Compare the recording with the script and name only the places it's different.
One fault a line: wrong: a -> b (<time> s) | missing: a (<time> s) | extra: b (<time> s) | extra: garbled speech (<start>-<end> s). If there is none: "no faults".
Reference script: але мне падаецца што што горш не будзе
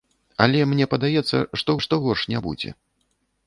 no faults